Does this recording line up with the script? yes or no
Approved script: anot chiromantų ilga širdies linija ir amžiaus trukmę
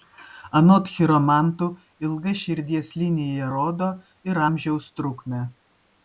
no